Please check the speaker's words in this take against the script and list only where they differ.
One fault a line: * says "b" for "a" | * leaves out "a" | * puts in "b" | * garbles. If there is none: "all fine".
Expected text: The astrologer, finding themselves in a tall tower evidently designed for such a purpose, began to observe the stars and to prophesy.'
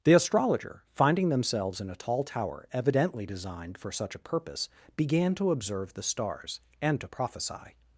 all fine